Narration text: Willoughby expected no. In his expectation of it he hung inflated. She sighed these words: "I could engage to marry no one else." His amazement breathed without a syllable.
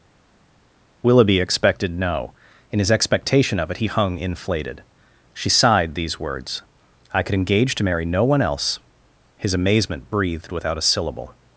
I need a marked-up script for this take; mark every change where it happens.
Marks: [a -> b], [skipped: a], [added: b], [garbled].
Willoughby expected no. In his expectation of it he hung inflated. She sighed these words: "I could engage to marry no one else." His amazement breathed without a syllable.